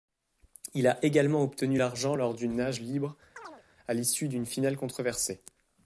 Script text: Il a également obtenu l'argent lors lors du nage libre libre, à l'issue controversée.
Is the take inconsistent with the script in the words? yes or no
yes